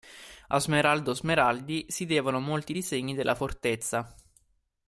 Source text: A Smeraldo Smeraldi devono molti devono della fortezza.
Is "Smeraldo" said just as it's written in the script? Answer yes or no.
yes